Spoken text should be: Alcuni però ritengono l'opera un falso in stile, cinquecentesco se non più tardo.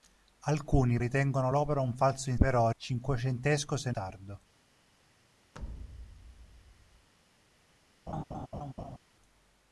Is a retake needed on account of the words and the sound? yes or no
yes